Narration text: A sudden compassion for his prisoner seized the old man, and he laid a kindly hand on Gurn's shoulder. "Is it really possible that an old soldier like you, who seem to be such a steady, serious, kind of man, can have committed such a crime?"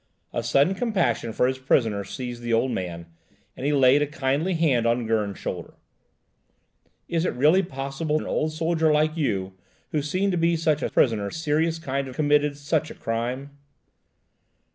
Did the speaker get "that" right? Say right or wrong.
wrong